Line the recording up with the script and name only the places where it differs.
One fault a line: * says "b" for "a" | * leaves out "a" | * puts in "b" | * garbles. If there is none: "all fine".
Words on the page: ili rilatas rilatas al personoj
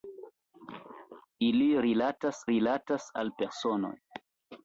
all fine